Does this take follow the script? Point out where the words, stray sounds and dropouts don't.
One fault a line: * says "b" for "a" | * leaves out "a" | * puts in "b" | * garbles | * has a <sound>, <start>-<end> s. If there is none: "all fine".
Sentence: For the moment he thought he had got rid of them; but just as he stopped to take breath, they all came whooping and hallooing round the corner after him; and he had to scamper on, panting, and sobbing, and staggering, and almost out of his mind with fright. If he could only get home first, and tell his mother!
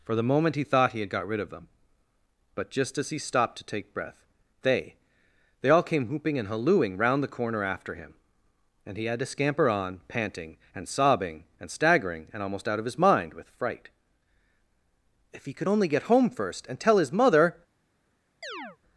* puts in "they"
* has a chirp, 18.4-18.8 s